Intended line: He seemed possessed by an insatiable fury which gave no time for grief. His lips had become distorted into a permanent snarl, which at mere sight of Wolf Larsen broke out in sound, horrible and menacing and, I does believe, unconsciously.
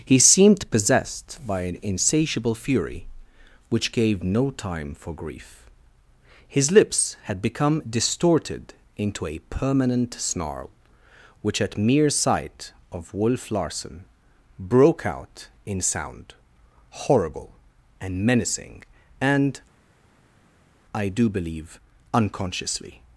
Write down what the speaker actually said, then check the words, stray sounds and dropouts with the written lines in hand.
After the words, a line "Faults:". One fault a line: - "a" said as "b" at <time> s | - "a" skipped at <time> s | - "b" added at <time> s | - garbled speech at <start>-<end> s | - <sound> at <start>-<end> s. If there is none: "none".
He seemed possessed by an insatiable fury which gave no time for grief. His lips had become distorted into a permanent snarl, which at mere sight of Wolf Larsen broke out in sound, horrible and menacing and, I do believe, unconsciously.
Faults:
- "does" said as "do" at 21.1 s